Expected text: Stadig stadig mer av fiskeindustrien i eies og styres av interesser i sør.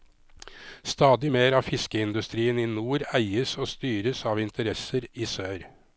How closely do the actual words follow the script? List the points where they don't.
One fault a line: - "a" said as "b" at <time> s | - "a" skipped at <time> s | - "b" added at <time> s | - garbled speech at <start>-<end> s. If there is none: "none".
- "stadig" skipped at 1.3 s
- "nord" added at 2.7 s